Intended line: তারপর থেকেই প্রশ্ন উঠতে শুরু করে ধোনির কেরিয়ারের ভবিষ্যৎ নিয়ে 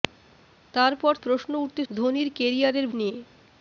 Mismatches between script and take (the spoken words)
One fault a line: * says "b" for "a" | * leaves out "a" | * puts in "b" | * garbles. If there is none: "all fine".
* leaves out "থেকেই"
* leaves out "শুরু করে"
* leaves out "ভবিষ্যৎ"